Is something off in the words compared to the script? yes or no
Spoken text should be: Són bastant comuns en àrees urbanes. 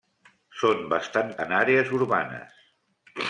yes